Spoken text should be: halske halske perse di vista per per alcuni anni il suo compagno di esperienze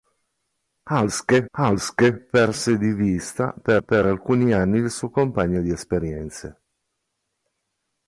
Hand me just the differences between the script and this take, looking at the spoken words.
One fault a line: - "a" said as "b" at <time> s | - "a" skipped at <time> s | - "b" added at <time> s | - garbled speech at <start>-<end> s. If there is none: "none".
none